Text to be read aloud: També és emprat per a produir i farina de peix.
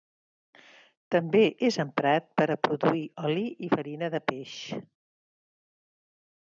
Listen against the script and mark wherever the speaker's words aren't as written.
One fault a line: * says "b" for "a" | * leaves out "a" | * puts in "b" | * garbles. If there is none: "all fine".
* puts in "oli"